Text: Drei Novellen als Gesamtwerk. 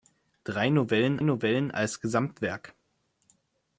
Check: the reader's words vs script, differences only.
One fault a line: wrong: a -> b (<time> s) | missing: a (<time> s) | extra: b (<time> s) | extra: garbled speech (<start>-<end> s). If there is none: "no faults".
extra: Novellen (1.2 s)